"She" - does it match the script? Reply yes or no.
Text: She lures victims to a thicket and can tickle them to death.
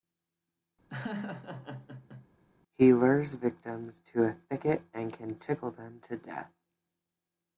no